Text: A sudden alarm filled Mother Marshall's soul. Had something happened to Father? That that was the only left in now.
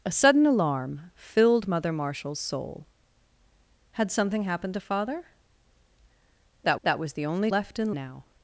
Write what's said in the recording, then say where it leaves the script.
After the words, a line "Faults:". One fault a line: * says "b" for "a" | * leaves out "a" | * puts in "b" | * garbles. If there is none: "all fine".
A sudden alarm filled Mother Marshall's soul. Had something happened to Father? That that was the only left in now.
Faults:
all fine